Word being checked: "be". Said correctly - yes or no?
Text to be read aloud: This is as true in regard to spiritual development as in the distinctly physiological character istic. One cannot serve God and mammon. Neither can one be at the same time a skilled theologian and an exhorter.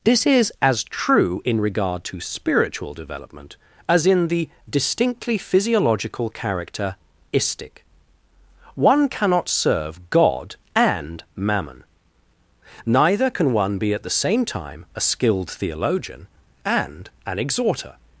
yes